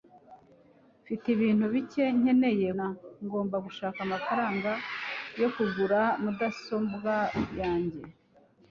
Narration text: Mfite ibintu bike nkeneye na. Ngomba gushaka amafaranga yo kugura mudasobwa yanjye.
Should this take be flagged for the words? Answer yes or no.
no